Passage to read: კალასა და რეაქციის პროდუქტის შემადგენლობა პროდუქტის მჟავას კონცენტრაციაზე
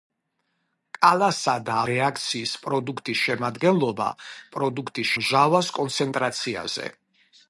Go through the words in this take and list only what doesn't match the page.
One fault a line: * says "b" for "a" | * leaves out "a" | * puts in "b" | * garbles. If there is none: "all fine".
all fine